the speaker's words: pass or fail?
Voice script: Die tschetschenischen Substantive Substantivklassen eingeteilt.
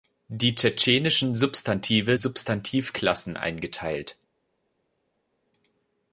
pass